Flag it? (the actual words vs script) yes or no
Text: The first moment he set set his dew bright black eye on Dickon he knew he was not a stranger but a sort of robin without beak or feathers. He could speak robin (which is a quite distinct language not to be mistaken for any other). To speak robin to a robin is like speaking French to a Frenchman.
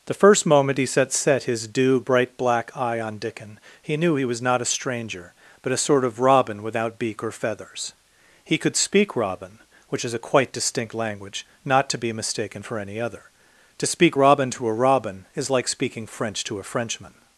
no